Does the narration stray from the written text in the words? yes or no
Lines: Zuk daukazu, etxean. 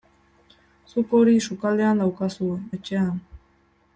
yes